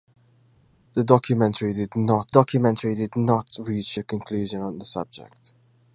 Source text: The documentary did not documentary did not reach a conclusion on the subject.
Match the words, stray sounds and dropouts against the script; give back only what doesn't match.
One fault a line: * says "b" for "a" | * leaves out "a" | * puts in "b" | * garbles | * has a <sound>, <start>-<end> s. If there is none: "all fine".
all fine